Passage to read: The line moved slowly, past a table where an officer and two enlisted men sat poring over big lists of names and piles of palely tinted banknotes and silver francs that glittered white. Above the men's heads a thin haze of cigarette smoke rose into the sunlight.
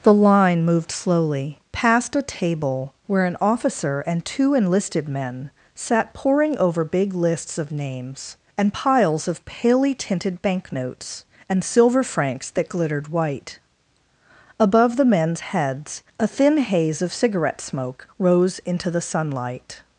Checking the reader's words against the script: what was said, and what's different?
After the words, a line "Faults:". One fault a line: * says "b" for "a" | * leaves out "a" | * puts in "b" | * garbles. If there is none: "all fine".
The line moved slowly, past a table where an officer and two enlisted men sat poring over big lists of names and piles of palely tinted banknotes and silver francs that glittered white. Above the men's heads a thin haze of cigarette smoke rose into the sunlight.
Faults:
all fine